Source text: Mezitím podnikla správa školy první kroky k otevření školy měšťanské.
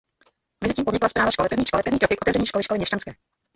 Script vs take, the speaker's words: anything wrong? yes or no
yes